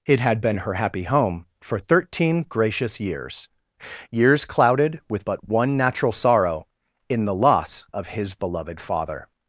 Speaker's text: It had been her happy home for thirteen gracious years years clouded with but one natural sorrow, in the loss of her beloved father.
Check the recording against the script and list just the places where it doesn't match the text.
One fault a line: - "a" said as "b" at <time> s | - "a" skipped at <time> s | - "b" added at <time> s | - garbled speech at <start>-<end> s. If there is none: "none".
- "her" said as "his" at 8.1 s